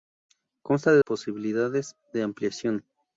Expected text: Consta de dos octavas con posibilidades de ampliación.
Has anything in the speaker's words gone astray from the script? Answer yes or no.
yes